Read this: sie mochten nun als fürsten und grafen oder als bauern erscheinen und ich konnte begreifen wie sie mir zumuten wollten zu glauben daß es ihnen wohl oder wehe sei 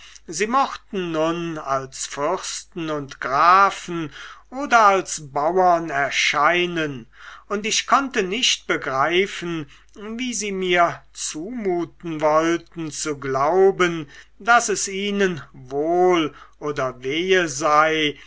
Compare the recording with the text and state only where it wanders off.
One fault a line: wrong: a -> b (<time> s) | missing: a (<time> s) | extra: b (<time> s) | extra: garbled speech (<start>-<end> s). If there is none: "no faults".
extra: nicht (8.2 s)